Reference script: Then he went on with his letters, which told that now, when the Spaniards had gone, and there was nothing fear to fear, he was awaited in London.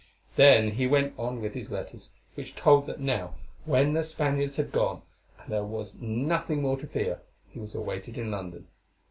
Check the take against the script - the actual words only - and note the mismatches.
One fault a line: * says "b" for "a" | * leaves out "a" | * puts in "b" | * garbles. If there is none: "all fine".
* says "more" for "fear"